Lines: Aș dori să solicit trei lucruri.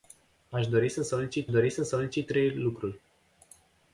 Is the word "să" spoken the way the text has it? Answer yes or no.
yes